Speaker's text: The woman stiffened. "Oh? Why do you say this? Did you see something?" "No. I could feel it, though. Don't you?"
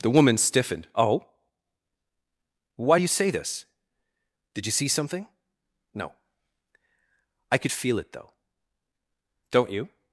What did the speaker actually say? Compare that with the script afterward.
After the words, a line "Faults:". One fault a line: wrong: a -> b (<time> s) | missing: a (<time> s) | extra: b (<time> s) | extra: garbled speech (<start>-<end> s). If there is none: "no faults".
The woman stiffened. "Oh? Why do you say this? Did you see something?" "No. I could feel it, though. Don't you?"
Faults:
no faults